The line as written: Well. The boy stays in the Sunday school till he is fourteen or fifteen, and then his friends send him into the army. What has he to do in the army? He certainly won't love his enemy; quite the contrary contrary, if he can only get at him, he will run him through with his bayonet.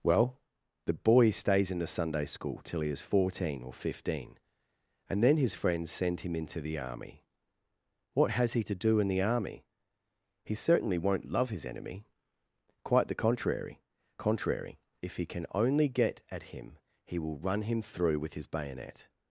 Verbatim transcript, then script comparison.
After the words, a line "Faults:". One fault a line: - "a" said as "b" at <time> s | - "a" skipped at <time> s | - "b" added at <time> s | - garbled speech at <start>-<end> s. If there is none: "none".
Well. The boy stays in the Sunday school till he is fourteen or fifteen, and then his friends send him into the army. What has he to do in the army? He certainly won't love his enemy; quite the contrary contrary, if he can only get at him, he will run him through with his bayonet.
Faults:
none